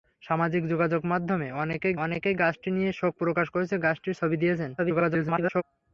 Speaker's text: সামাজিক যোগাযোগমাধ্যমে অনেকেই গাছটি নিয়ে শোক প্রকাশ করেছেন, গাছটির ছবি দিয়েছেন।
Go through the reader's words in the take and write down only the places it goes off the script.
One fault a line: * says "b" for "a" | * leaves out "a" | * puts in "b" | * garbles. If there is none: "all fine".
* puts in "অনেকেই"
* garbles